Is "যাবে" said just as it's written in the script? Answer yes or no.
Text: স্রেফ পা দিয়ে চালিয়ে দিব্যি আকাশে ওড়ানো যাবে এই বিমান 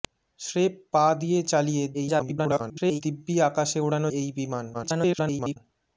no